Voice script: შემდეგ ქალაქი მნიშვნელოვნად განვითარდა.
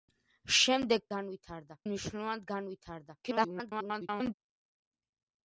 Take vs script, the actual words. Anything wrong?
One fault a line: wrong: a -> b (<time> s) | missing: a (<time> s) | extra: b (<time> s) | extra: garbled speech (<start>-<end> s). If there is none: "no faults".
wrong: ქალაქი -> განვითარდა (1.1 s)
extra: garbled speech (3.2-4.3 s)